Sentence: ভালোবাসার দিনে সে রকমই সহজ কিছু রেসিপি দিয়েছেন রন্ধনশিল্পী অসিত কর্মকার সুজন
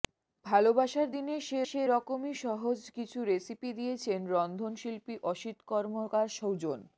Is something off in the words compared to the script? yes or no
yes